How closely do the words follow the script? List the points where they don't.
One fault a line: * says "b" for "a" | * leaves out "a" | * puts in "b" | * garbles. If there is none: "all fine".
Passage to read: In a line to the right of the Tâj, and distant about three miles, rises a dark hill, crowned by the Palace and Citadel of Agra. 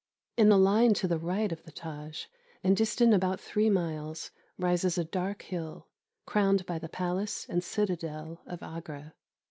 all fine